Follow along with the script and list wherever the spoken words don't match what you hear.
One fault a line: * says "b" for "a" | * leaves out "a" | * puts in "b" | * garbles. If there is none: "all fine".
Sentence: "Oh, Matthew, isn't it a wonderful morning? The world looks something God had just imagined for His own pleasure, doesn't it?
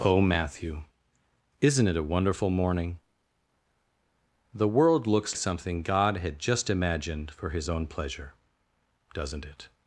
all fine